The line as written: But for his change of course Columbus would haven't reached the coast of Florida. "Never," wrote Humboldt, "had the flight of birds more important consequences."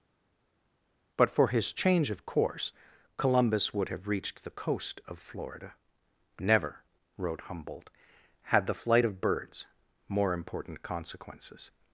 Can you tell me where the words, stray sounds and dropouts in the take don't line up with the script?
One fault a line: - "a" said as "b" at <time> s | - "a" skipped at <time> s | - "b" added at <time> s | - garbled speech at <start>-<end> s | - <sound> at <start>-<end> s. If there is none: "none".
- "haven't" said as "have" at 3.9 s